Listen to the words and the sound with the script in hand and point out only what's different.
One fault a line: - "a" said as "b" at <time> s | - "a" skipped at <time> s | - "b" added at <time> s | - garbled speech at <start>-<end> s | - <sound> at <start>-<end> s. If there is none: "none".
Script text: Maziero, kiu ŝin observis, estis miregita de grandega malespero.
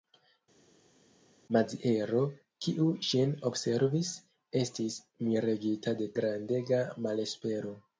none